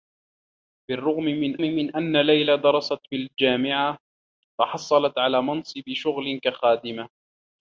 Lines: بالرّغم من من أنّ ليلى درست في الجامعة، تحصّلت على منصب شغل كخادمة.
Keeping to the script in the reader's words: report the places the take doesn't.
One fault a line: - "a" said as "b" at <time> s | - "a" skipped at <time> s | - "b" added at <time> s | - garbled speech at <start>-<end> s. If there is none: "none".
none